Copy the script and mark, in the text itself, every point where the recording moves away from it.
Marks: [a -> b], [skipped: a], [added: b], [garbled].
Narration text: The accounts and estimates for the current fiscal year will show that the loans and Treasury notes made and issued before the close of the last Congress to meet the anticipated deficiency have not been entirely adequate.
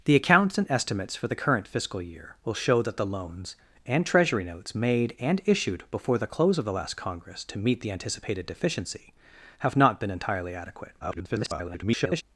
The accounts and estimates for the current fiscal year will show that the loans and Treasury notes made and issued before the close of the last Congress to meet the anticipated deficiency have not been entirely adequate. [garbled]